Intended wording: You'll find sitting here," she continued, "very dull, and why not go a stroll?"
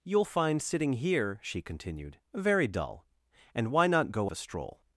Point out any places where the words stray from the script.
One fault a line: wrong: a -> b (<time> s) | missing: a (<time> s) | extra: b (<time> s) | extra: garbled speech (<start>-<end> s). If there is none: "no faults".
no faults